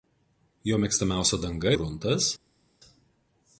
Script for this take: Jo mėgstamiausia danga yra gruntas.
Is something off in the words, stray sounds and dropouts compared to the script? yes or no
yes